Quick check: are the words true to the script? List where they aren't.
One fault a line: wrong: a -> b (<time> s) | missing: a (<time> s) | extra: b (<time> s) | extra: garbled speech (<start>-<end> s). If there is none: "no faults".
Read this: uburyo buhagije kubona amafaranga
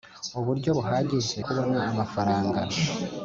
no faults